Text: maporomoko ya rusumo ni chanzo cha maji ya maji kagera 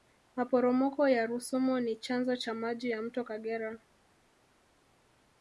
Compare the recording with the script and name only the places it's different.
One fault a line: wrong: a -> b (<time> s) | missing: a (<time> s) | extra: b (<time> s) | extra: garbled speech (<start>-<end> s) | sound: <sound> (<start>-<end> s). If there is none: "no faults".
wrong: maji -> mto (3.0 s)